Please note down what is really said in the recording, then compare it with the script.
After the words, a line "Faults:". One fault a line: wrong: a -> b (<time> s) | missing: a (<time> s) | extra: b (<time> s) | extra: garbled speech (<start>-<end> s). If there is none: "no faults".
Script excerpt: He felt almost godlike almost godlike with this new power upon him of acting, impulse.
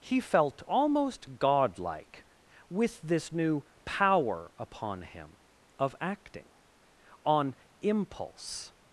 He felt almost godlike with this new power upon him of acting, on impulse.
Faults:
missing: almost godlike (2.2 s)
extra: on (7.2 s)